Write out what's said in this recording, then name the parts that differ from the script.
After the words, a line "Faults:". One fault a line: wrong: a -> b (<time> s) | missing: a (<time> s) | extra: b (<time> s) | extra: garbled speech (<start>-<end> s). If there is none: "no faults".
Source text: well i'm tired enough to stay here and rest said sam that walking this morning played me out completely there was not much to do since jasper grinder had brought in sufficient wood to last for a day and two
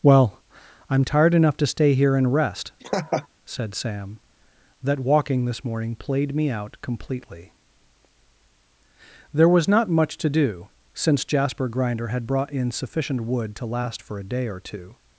well i'm tired enough to stay here and rest said sam that walking this morning played me out completely there was not much to do since jasper grinder had brought in sufficient wood to last for a day or two
Faults:
wrong: and -> or (14.5 s)